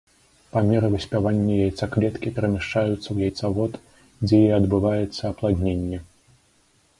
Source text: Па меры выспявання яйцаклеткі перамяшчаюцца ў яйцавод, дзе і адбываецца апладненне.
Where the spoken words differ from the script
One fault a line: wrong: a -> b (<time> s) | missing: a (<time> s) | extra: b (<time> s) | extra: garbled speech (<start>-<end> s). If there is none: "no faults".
no faults